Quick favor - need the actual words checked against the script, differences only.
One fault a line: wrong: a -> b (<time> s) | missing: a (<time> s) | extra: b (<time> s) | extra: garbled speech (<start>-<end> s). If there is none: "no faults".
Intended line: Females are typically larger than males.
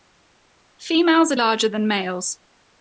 missing: typically (1.4 s)